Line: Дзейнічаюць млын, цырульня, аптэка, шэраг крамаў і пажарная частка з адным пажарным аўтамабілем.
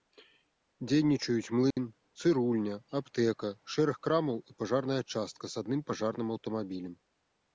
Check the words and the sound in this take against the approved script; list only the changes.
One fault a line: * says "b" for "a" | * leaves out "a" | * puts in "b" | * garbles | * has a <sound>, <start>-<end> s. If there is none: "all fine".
* has a dropout, 1.7-1.8 s